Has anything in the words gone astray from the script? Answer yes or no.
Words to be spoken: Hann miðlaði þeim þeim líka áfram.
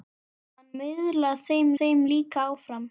no